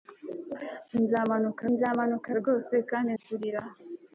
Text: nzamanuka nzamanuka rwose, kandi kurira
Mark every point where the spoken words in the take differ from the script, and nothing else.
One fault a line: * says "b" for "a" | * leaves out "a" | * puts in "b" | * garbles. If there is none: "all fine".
all fine